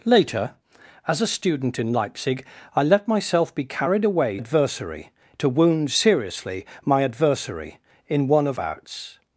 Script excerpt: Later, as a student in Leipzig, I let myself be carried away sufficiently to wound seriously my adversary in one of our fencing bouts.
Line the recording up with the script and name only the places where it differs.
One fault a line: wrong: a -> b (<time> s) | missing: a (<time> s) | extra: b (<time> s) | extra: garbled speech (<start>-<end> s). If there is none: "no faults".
wrong: sufficiently -> adversary (4.4 s)
missing: our fencing (8.6 s)